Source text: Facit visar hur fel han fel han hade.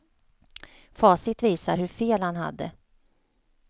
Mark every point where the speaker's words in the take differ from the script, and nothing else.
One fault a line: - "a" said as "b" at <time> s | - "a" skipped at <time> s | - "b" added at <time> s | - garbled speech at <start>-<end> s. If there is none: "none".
- "fel han" skipped at 2.4 s